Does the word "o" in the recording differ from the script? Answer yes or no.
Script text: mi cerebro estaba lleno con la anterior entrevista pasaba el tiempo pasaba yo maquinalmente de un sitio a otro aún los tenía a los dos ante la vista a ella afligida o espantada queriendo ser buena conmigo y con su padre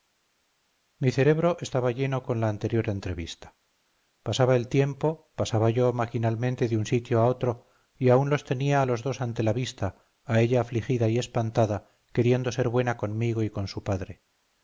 yes